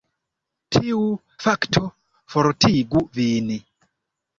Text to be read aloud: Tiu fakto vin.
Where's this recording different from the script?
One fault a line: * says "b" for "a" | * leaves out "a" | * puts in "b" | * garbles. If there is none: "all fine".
* puts in "fortigu"